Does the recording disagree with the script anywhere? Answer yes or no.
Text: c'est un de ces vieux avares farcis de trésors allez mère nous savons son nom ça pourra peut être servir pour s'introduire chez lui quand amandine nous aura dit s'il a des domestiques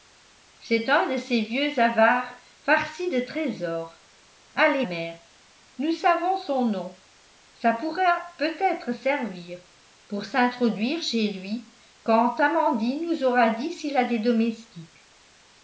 no